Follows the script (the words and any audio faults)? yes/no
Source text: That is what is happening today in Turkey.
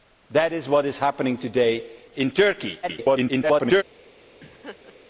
no